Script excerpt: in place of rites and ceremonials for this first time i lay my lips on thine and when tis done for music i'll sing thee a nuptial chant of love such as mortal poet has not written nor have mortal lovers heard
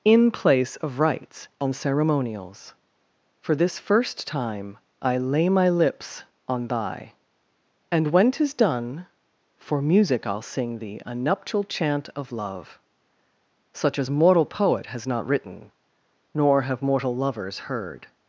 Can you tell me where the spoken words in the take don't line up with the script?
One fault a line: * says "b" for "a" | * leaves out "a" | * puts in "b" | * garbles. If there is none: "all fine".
* says "thy" for "thine"